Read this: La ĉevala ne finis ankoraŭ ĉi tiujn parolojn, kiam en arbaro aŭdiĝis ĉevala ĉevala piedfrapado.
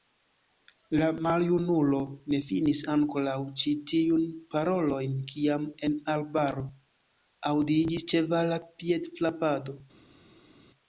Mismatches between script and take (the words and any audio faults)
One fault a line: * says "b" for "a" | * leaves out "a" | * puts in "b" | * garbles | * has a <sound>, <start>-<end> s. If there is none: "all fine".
* says "maljunulo" for "ĉevala"
* leaves out "ĉevala"